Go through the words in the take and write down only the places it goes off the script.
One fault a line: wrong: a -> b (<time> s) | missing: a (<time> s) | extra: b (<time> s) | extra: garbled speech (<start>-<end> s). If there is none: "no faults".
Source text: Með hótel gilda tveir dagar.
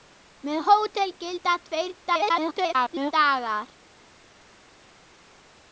extra: garbled speech (2.0-3.1 s)